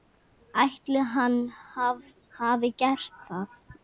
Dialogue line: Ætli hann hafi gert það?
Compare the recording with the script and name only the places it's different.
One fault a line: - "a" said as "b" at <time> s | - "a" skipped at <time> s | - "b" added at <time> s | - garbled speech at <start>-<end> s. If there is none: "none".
none